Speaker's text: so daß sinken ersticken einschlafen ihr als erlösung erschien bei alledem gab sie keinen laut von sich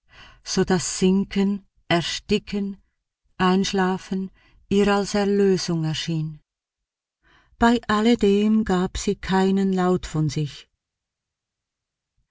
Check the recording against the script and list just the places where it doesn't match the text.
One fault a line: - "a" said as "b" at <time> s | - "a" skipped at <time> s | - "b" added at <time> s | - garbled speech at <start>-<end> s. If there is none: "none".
none